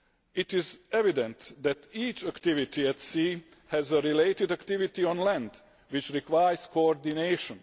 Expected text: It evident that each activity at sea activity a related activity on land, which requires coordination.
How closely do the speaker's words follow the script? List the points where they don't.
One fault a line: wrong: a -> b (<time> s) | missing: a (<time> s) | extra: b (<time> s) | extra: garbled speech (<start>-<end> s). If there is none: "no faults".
extra: is (0.5 s)
wrong: activity -> has (3.7 s)